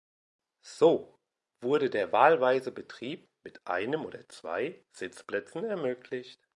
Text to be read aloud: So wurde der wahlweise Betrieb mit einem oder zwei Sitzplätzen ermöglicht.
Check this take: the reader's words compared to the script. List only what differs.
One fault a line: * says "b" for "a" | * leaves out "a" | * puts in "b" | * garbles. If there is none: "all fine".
all fine